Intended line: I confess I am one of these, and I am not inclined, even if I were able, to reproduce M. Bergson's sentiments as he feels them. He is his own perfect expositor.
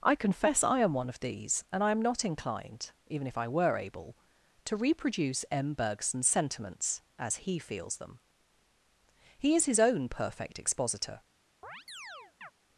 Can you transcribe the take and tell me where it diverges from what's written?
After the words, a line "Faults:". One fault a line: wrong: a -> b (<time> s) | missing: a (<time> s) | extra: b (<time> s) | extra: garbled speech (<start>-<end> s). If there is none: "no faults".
I confess I am one of these, and I am not inclined, even if I were able, to reproduce M. Bergson's sentiments as he feels them. He is his own perfect expositor.
Faults:
no faults